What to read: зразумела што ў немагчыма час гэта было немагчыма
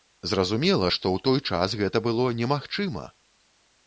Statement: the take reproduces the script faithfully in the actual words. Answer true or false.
false